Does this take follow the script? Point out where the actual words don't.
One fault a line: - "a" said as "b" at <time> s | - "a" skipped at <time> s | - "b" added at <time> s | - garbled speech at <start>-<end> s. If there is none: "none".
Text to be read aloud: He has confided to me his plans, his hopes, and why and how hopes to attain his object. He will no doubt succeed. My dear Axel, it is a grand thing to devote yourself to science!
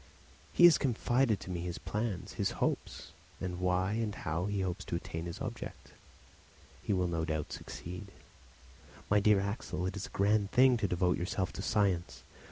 - "he" added at 4.5 s